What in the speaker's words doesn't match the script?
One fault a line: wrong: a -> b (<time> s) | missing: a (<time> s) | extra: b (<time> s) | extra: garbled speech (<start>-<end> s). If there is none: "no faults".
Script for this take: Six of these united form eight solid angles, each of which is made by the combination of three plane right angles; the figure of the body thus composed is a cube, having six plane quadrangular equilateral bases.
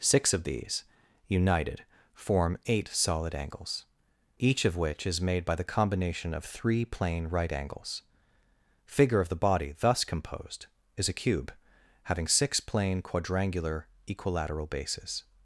missing: the (8.0 s)